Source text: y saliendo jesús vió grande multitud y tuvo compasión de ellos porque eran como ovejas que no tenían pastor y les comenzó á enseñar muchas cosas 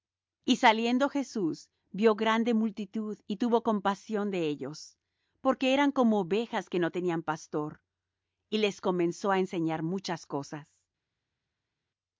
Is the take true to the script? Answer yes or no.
yes